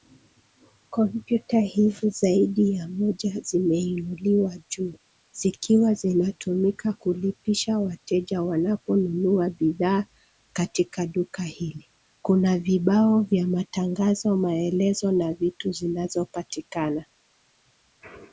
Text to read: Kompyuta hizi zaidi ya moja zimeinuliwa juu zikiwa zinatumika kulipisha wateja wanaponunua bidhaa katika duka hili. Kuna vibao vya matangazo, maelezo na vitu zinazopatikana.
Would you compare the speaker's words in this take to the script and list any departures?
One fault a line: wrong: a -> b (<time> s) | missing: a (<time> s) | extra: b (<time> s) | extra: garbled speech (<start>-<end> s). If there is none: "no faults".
no faults